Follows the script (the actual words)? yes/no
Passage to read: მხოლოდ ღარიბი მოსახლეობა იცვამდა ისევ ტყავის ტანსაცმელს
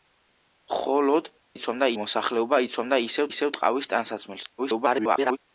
no